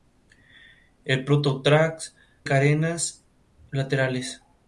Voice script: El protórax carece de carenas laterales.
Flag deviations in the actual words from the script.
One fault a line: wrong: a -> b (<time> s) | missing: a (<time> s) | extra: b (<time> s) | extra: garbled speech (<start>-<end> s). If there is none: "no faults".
missing: carece de (2.1 s)